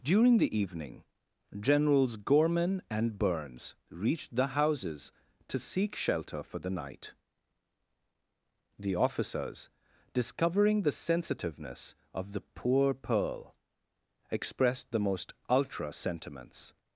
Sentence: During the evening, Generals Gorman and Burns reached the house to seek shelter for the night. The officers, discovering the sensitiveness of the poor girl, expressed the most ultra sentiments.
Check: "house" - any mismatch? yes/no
yes